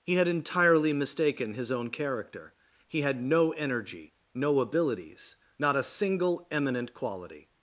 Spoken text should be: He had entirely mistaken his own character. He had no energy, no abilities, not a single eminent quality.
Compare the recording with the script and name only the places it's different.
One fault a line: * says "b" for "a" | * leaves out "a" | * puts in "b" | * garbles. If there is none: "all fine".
all fine